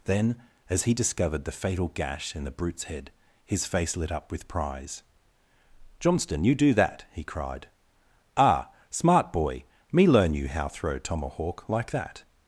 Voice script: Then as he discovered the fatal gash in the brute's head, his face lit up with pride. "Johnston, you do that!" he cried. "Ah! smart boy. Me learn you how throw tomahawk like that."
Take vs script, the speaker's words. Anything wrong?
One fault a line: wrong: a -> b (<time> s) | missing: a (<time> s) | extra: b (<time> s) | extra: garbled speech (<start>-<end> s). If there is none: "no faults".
wrong: pride -> prize (4.5 s)